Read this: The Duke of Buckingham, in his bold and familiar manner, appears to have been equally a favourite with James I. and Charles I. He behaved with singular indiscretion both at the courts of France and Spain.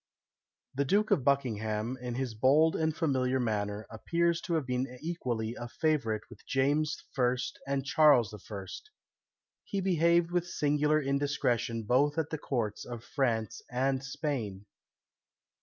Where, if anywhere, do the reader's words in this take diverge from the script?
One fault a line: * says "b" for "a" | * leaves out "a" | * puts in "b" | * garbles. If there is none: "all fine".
all fine